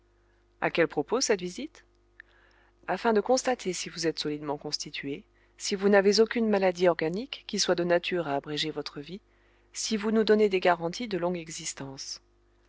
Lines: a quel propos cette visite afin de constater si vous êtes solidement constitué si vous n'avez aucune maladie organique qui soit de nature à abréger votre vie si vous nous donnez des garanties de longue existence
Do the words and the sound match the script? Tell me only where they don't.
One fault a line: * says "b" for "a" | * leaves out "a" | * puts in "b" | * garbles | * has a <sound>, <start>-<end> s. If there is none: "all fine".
all fine